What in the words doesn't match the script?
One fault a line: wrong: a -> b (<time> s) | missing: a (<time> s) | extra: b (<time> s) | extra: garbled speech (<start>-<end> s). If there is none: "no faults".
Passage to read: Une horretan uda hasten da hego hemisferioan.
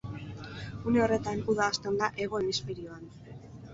no faults